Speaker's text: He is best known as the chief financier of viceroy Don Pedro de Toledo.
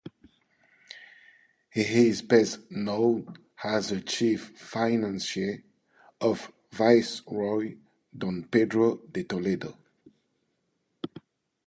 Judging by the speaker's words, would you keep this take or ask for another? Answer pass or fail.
pass